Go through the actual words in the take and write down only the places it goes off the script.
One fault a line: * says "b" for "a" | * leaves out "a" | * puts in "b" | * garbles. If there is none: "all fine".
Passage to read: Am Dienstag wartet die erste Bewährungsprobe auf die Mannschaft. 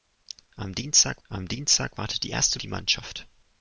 * puts in "am Dienstag"
* leaves out "Bewährungsprobe auf"